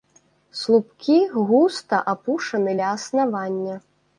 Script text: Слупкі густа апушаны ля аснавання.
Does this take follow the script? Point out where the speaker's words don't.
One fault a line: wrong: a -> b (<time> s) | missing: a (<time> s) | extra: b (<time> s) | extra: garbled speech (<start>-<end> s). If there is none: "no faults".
no faults